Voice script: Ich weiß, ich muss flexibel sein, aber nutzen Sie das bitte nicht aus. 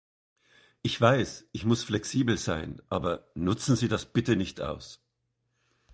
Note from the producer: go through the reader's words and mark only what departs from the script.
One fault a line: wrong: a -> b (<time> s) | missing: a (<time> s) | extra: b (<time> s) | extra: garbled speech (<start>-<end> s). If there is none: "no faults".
no faults